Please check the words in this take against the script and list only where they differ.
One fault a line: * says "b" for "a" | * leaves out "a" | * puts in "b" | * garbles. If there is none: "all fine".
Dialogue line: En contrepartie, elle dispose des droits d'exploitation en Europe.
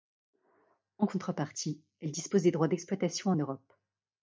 all fine